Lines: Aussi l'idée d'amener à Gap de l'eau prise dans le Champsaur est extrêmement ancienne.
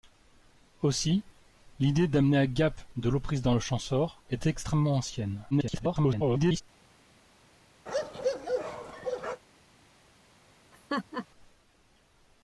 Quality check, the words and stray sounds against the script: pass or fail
fail